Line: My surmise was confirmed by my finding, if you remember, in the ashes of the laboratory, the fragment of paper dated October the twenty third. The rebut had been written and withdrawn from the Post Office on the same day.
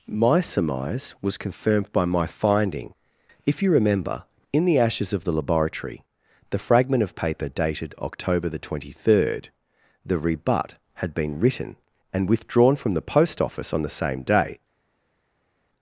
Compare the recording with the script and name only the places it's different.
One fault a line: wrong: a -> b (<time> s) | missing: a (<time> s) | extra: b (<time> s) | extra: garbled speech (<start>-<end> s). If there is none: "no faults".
no faults